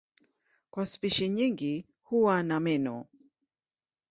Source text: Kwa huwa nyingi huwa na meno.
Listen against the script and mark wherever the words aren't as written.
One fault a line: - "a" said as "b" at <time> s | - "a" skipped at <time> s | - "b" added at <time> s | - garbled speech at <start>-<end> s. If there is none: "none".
- "huwa" said as "spishi" at 0.8 s